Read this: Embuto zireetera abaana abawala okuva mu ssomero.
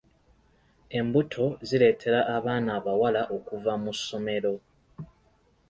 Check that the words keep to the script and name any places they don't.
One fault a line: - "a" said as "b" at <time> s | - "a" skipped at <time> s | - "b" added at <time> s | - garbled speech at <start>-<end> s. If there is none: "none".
none